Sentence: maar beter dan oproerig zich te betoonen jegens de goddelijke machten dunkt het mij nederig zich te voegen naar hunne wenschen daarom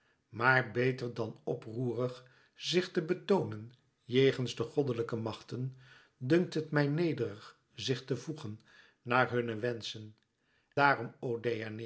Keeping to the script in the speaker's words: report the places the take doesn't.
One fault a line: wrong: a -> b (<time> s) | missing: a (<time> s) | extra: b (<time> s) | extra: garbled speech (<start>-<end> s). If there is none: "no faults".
no faults